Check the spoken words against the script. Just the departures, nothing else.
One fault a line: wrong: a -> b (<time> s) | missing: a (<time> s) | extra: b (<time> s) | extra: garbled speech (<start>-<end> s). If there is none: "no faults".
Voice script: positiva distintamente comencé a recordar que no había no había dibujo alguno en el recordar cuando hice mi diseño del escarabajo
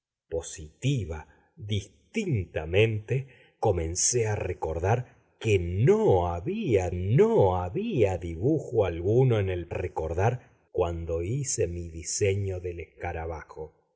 no faults